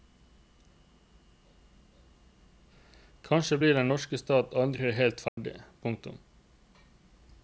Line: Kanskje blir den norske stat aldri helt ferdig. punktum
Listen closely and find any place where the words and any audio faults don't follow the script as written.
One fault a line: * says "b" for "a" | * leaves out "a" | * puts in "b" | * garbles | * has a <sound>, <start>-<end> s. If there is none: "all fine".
* has a dropout, 5.3-5.4 s